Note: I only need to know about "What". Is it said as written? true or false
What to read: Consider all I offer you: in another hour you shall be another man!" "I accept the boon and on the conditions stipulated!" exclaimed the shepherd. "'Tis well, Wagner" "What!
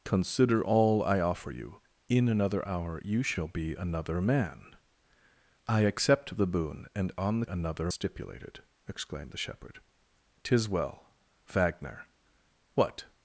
true